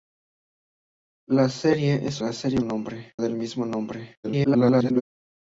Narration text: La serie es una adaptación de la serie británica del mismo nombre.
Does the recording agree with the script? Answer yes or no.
no